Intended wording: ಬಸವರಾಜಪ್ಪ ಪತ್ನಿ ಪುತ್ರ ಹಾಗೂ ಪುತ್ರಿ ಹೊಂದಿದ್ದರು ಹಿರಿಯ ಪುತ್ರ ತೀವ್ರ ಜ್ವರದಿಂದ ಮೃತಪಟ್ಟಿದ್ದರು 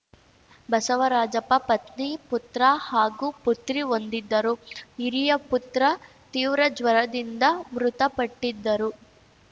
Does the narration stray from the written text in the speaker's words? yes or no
no